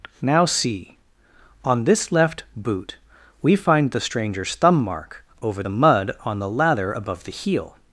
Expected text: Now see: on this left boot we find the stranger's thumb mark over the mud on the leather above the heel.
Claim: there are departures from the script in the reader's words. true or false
true